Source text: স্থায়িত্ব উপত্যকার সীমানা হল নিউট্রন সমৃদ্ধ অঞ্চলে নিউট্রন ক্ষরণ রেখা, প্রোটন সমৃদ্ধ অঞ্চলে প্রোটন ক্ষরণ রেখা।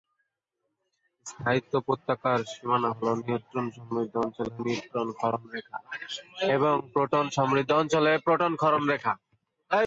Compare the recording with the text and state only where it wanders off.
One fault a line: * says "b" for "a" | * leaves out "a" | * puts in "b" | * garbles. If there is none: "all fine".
* puts in "এবং"